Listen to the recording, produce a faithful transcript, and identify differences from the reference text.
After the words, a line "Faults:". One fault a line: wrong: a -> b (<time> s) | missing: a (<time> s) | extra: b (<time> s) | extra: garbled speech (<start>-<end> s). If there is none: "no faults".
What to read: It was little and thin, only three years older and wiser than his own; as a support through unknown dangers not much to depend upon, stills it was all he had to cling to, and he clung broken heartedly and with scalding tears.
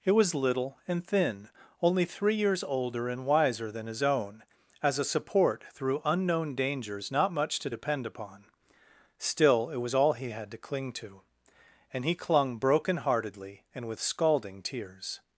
It was little and thin, only three years older and wiser than his own; as a support through unknown dangers not much to depend upon, still it was all he had to cling to, and he clung broken heartedly and with scalding tears.
Faults:
wrong: stills -> still (9.2 s)